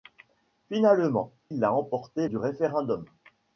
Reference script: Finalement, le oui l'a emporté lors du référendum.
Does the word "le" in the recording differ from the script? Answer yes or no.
yes